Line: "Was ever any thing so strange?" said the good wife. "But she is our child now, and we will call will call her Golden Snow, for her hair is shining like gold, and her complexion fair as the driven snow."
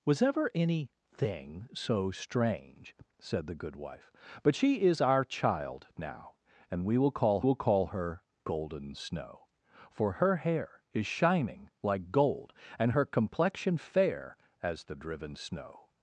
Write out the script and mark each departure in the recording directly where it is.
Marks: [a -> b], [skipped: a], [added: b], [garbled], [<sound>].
"Was ever any thing so strange?" said the good wife. "But she is our child now, and we will call will call her Golden Snow, for her hair is shining like gold, and her complexion fair as the driven snow."